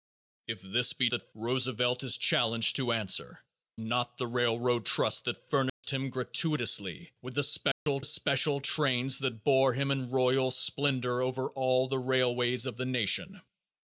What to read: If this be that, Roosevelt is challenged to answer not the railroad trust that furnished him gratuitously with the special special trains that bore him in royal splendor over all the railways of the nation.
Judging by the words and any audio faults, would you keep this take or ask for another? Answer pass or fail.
fail